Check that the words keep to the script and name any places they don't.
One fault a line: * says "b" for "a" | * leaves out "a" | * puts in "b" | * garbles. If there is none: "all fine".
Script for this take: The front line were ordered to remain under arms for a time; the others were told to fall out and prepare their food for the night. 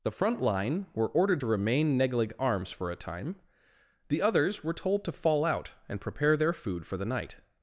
* says "neglig" for "under"